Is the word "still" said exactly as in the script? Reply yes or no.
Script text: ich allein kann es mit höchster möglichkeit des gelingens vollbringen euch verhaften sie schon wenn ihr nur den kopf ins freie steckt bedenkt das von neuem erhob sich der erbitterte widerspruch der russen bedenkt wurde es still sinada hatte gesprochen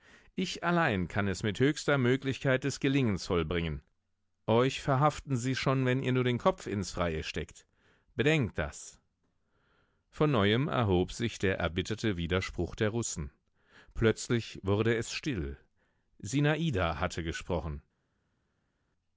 yes